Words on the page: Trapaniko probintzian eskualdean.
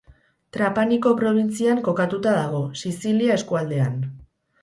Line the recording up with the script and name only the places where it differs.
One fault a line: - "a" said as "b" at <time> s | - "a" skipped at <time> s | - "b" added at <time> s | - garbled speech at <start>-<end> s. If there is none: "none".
- "kokatuta dago Sizilia" added at 1.9 s